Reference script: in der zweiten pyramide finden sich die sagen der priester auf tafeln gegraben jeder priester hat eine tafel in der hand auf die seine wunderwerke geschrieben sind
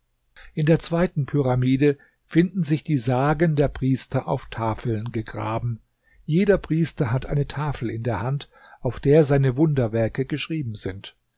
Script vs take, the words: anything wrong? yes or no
yes